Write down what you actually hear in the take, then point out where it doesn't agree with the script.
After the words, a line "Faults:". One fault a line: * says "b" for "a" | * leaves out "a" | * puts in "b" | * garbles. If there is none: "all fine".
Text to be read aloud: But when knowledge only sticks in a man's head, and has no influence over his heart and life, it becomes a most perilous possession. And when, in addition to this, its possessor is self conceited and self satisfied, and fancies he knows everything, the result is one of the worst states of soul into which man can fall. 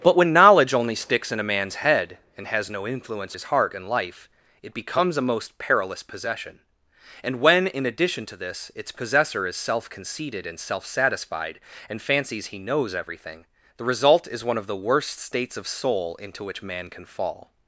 But when knowledge only sticks in a man's head, and has no influence his heart and life, it becomes a most perilous possession. And when, in addition to this, its possessor is self conceited and self satisfied, and fancies he knows everything, the result is one of the worst states of soul into which man can fall.
Faults:
* leaves out "over"